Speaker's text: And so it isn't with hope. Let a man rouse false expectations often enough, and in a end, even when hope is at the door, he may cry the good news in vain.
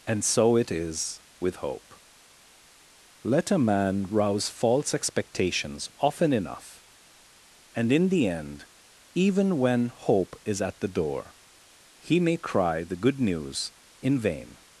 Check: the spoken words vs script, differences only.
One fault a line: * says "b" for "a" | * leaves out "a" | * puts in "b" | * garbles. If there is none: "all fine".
* says "is" for "isn't"
* says "the" for "a"